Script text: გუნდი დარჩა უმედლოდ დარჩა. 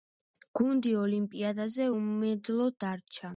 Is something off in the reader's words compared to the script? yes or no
yes